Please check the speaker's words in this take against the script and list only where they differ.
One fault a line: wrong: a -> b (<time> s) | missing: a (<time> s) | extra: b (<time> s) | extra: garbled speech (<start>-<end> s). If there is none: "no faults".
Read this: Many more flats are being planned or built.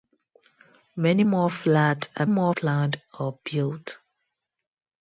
wrong: being -> more (2.2 s)